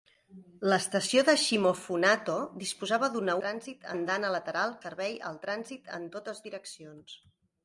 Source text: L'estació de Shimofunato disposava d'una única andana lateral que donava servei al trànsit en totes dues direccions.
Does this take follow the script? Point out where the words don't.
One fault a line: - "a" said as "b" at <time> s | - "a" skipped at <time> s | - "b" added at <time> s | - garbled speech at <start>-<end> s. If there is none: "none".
- "única" said as "trànsit" at 3.4 s
- "que donava" skipped at 4.8 s
- "dues" skipped at 6.5 s